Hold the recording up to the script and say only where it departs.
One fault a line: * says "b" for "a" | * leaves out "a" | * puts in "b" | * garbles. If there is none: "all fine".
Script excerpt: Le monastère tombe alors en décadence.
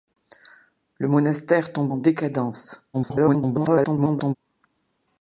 * leaves out "alors"
* garbles